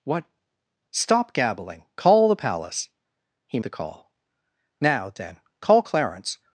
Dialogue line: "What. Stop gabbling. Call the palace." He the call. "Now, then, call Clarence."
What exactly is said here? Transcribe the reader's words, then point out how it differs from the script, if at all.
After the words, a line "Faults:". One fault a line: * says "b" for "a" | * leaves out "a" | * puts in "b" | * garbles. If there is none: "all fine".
"What. Stop gabbling. Call the palace." He the call. "Now, then, call Clarence."
Faults:
all fine